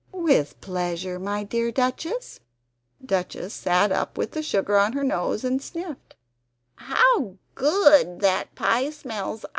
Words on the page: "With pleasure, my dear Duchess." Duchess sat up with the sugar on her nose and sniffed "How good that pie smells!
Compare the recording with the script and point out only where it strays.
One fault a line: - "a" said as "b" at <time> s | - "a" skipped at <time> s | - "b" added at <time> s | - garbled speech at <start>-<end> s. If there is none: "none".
none